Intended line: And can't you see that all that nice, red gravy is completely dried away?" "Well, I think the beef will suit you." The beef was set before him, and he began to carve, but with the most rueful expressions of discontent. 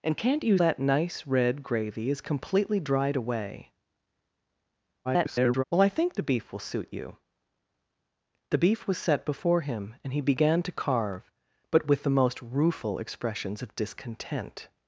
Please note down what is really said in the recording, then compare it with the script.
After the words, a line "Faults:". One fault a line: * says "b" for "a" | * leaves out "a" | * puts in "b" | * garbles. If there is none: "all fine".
And can't you that nice, red gravy is completely dried away?" [garbled] "Well, I think the beef will suit you." The beef was set before him, and he began to carve, but with the most rueful expressions of discontent.
Faults:
* leaves out "see that all"
* garbles